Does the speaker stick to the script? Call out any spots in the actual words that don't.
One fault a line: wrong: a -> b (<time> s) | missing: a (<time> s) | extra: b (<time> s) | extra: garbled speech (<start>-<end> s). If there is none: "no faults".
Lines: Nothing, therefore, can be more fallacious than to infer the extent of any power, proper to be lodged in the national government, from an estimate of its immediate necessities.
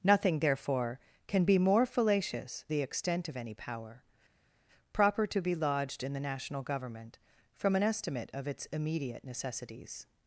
missing: than to infer (2.6 s)